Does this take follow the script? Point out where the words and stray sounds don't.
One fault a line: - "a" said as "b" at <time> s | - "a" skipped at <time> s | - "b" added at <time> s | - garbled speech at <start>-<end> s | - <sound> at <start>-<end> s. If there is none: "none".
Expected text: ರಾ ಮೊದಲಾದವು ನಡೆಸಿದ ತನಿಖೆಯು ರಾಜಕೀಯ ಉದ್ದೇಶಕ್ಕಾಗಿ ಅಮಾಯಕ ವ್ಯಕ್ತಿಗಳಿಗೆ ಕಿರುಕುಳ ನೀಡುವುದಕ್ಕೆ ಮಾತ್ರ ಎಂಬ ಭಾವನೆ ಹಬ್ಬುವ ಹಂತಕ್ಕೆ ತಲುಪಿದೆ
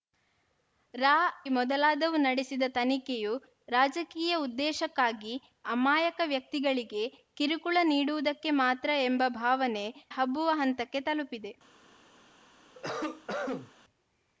- cough at 12.7-13.7 s